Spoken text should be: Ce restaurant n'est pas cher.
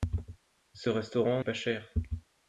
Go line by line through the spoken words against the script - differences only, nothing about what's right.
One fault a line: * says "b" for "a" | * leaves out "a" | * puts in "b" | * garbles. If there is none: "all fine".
* leaves out "n'est"